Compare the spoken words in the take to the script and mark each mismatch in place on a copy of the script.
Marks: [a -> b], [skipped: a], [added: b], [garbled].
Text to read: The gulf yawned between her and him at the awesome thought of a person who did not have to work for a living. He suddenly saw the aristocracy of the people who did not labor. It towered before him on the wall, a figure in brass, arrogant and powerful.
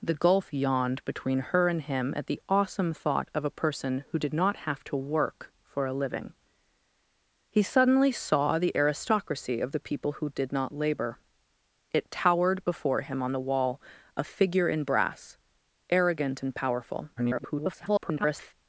The gulf yawned between her and him at the awesome thought of a person who did not have to work for a living. He suddenly saw the aristocracy of the people who did not labor. It towered before him on the wall, a figure in brass, arrogant and powerful. [garbled]